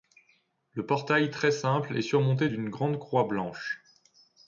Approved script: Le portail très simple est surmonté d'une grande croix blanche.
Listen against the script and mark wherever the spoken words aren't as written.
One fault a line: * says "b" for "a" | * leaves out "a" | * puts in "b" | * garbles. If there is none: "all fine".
all fine